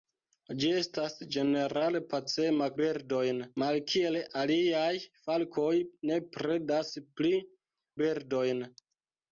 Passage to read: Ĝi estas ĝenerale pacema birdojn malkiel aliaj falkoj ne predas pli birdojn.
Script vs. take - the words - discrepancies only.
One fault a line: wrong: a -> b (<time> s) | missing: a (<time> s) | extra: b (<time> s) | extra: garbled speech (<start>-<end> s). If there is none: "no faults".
no faults